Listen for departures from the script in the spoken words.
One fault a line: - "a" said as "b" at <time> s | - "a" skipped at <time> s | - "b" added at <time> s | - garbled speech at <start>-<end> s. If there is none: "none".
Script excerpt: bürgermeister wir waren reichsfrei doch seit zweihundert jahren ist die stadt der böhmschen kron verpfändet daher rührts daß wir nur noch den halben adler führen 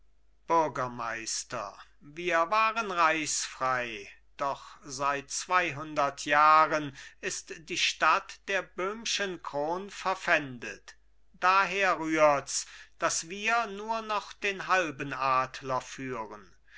none